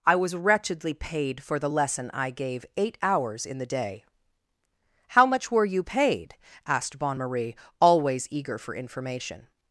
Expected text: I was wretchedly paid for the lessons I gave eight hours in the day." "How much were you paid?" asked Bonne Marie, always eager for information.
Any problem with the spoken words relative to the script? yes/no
yes